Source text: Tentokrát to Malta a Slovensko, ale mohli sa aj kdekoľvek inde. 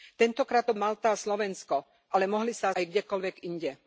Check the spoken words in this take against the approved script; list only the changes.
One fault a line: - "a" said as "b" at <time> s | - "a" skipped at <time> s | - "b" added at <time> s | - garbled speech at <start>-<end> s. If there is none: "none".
none